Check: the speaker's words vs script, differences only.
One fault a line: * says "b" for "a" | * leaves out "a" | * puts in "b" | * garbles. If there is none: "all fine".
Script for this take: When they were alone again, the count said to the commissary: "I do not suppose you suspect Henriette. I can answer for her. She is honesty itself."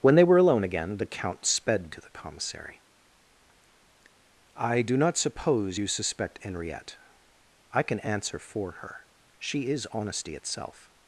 * says "sped" for "said"